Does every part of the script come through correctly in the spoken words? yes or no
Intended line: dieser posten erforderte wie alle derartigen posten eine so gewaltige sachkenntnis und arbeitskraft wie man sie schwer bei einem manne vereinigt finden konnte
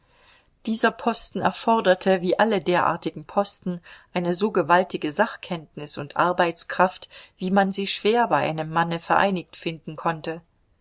yes